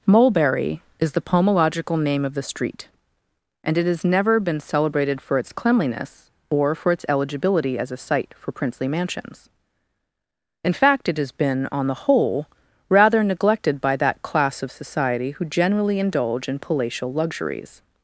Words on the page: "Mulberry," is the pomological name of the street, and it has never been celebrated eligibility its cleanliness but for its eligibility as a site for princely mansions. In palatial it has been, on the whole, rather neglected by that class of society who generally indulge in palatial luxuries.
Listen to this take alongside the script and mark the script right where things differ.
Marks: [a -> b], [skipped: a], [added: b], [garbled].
"Mulberry," is the pomological name of the street, and it has never been celebrated [eligibility -> for] its cleanliness [but -> or] for its eligibility as a site for princely mansions. In [palatial -> fact] it has been, on the whole, rather neglected by that class of society who generally indulge in palatial luxuries.